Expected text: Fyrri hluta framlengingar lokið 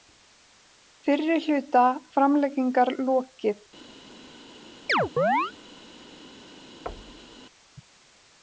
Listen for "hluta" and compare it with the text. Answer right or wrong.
right